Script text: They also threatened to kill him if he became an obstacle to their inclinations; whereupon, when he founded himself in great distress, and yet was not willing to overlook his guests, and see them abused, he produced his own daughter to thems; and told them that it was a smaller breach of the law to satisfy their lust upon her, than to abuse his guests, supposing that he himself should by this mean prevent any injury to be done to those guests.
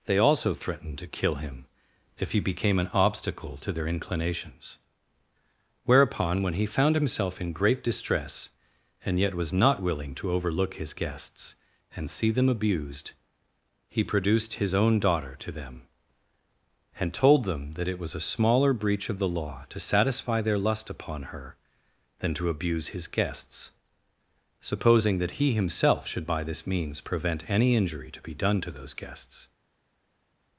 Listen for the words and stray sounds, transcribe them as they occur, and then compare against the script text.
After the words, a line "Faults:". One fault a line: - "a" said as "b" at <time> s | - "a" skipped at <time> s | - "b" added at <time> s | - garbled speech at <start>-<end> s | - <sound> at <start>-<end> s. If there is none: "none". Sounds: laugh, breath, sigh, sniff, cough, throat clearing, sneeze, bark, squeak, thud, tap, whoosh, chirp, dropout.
They also threatened to kill him if he became an obstacle to their inclinations; whereupon, when he found himself in great distress, and yet was not willing to overlook his guests, and see them abused, he produced his own daughter to them; and told them that it was a smaller breach of the law to satisfy their lust upon her, than to abuse his guests, supposing that he himself should by this means prevent any injury to be done to those guests.
Faults:
- "founded" said as "found" at 6.7 s
- "thems" said as "them" at 15.5 s
- "mean" said as "means" at 26.6 s